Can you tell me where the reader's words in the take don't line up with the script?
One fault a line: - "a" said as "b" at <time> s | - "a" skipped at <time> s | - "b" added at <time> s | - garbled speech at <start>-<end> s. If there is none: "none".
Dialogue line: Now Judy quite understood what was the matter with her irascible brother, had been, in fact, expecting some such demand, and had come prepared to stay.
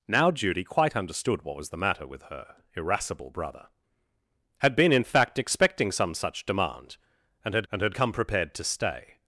- "and had" added at 7.7 s